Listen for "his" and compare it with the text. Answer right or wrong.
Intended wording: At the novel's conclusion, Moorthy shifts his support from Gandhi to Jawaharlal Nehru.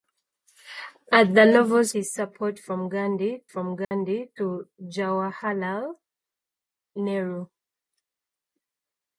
wrong